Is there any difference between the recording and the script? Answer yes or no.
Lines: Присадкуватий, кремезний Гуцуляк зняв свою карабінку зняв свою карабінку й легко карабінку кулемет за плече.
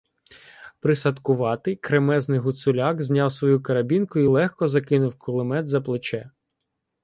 yes